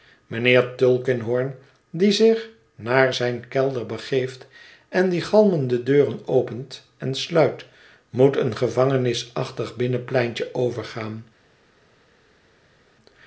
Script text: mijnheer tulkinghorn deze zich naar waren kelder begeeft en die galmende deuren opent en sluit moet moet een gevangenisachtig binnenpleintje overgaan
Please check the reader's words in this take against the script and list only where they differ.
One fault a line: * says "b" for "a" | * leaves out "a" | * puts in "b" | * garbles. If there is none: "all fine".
* says "die" for "deze"
* says "zijn" for "waren"
* leaves out "moet"